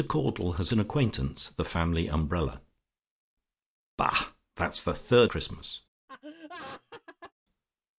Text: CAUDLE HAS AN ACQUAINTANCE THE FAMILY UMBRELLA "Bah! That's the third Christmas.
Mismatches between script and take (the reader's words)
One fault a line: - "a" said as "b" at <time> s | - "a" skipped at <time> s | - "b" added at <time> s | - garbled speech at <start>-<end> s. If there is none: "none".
none